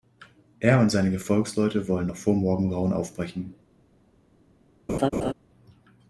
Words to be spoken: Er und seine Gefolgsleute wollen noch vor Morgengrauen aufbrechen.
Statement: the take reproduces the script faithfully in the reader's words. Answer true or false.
true